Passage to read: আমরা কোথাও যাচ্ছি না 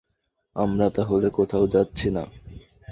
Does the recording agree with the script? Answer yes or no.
no